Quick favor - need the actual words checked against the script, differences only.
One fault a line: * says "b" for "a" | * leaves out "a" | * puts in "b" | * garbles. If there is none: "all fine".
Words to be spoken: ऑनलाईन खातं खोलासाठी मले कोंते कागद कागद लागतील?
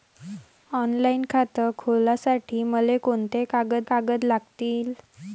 all fine